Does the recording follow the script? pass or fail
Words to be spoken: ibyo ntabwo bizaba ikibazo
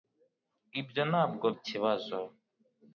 fail